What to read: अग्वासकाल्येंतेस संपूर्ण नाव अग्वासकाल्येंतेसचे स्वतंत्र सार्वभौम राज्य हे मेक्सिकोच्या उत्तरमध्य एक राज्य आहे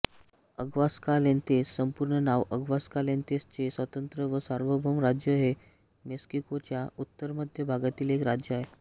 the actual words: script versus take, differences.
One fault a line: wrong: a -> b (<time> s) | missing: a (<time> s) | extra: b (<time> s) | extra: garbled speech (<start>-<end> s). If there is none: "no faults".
extra: व (4.3 s)
extra: भागातील (7.7 s)